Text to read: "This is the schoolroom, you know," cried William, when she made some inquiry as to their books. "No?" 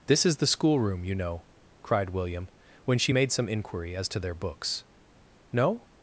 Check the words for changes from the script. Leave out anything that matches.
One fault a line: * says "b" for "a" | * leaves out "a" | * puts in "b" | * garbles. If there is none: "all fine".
all fine